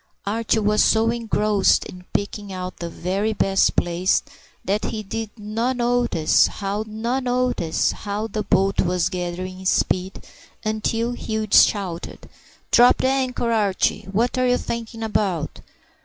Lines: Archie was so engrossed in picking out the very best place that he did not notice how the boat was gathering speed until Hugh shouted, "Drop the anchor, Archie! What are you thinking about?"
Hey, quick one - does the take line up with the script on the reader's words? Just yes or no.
no